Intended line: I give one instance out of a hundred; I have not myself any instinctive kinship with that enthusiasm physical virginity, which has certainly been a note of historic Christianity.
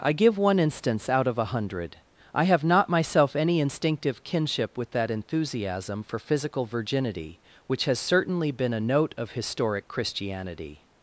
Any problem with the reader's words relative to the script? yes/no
yes